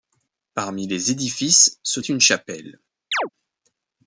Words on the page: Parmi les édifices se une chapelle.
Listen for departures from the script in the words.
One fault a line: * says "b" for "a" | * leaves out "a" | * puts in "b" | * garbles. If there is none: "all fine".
all fine